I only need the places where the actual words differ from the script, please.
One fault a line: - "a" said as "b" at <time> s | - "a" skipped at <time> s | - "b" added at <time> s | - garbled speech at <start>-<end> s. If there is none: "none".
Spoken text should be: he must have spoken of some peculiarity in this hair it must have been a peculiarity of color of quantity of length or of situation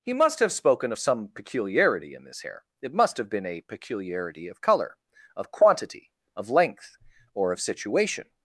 none